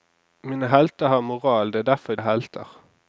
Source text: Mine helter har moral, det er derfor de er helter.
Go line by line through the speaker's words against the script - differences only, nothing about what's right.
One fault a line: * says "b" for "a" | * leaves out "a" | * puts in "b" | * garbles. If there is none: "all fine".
* leaves out "de"